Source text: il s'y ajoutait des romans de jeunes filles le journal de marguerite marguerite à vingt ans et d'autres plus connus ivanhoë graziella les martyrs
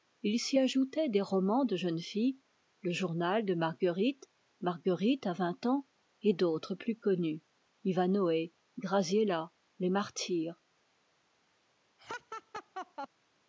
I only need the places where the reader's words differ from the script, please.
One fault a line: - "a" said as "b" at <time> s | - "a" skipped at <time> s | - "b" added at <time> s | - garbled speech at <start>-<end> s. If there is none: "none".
none